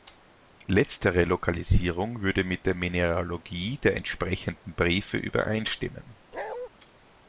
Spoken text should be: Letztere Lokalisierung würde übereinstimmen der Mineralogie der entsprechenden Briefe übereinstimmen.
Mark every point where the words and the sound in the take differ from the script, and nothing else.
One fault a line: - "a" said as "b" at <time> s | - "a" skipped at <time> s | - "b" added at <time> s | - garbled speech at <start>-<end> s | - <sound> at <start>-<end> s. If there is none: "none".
- "übereinstimmen" said as "mit" at 2.4 s
- bark at 6.3-6.7 s